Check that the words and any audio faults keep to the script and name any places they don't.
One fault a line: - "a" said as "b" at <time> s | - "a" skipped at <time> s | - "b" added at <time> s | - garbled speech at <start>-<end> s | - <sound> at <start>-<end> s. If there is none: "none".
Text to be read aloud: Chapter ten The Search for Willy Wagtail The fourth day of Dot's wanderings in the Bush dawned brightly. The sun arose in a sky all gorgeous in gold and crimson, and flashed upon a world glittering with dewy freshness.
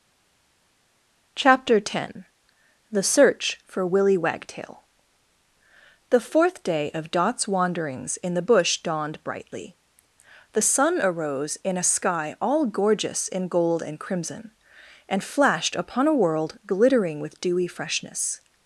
none